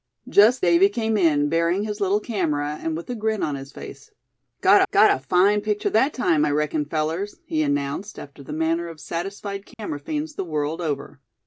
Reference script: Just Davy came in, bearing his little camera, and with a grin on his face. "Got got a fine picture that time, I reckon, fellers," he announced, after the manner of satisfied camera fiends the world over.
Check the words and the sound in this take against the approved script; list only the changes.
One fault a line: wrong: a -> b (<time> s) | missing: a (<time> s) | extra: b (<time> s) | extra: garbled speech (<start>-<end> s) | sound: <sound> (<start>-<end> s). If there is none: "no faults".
sound: dropout (9.7-9.8 s)